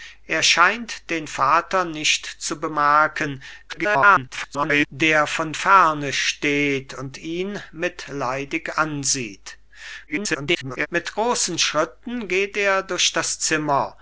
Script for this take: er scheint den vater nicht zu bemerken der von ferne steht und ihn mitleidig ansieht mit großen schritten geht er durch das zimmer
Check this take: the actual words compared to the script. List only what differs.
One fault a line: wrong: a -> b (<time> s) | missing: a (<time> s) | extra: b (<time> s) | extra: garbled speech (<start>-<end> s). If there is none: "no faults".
extra: garbled speech (3.7-4.9 s)
extra: garbled speech (10.1-10.9 s)